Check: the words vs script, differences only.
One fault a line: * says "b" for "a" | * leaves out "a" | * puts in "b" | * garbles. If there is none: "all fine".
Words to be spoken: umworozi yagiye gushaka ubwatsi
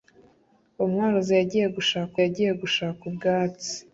* puts in "yagiye gushaka"